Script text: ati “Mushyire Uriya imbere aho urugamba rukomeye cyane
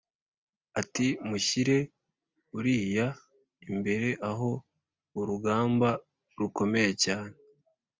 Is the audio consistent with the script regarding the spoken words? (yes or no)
yes